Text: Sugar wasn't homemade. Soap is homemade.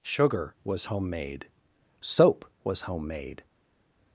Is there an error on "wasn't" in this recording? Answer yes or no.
yes